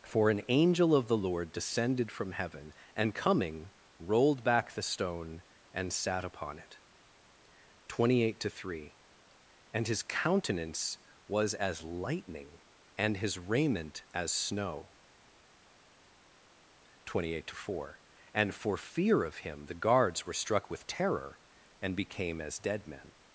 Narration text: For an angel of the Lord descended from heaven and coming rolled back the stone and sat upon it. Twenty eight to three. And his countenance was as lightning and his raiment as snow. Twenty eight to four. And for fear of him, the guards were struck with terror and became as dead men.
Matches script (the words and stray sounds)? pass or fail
pass